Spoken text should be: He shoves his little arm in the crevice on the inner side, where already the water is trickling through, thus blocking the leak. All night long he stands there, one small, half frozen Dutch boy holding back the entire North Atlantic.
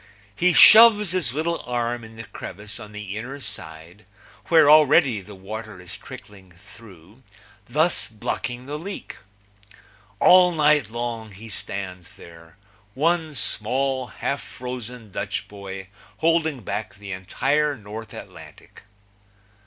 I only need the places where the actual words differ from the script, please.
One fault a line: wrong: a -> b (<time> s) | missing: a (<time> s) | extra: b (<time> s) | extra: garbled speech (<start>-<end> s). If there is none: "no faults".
no faults